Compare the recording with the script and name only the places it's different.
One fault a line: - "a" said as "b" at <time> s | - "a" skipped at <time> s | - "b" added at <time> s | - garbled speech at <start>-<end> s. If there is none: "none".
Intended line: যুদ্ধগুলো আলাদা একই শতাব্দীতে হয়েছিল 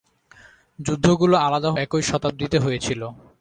none